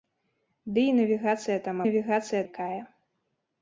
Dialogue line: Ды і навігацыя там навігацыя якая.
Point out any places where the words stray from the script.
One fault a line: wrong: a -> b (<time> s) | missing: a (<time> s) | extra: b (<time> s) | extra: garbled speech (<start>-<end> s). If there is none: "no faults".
no faults